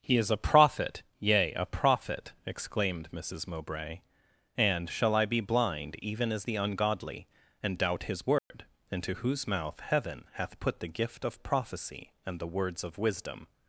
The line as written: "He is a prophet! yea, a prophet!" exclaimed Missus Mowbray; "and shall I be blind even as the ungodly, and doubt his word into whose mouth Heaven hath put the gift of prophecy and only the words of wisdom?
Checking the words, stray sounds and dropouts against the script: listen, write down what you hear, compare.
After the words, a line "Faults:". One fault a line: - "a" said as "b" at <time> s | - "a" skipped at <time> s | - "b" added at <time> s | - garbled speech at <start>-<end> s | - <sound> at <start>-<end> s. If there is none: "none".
"He is a prophet! yea, a prophet!" exclaimed Missus Mowbray; "and shall I be blind even as the ungodly, and doubt his word into whose mouth Heaven hath put the gift of prophecy and the words of wisdom?
Faults:
- dropout at 8.4-8.5 s
- "only" skipped at 12.4 s